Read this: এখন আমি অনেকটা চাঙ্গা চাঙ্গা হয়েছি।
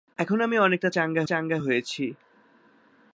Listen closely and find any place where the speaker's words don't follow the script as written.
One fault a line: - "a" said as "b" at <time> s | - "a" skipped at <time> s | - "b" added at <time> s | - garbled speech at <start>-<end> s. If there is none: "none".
none